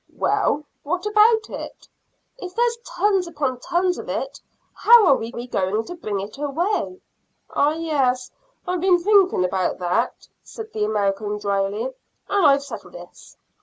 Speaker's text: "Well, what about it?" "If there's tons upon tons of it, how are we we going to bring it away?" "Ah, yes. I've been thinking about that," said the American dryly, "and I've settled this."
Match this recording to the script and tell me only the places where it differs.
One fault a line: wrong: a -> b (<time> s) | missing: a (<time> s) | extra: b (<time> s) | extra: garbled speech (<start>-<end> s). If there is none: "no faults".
no faults